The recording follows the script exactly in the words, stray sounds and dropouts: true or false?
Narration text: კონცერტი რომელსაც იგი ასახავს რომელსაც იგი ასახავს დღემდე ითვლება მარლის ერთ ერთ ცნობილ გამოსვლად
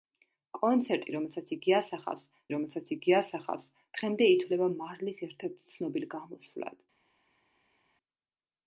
true